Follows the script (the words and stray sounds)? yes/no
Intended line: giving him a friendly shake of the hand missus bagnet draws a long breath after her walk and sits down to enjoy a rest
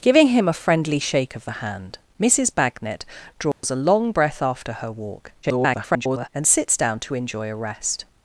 no